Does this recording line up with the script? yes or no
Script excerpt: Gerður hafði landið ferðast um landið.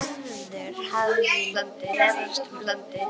yes